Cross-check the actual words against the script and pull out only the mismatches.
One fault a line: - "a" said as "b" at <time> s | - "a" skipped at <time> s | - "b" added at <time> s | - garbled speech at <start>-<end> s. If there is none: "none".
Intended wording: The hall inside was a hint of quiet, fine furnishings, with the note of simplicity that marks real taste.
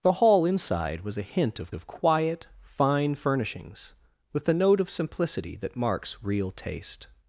- "of" added at 1.7 s